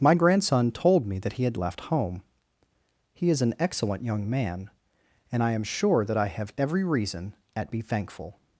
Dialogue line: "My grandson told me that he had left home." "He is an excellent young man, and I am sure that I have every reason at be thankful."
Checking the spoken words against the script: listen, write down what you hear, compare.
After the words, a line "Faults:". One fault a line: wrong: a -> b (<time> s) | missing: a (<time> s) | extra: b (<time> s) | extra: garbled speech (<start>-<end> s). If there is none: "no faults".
"My grandson told me that he had left home." "He is an excellent young man, and I am sure that I have every reason at be thankful."
Faults:
no faults